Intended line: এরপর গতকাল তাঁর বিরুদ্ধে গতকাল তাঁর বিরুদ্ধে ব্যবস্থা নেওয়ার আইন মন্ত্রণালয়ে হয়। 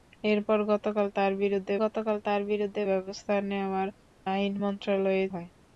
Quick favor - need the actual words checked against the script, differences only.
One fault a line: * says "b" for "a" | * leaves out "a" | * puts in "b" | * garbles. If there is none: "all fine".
all fine